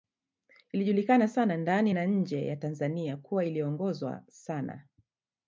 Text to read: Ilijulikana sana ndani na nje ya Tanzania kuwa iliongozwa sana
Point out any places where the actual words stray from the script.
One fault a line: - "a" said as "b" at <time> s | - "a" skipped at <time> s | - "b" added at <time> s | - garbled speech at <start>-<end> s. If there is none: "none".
none